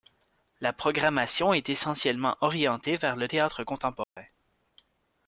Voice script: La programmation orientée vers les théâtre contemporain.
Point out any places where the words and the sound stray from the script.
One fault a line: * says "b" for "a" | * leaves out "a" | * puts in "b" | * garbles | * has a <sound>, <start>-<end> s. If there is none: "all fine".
* puts in "est essentiellement"
* says "le" for "les"
* has a dropout, 4.0-4.2 s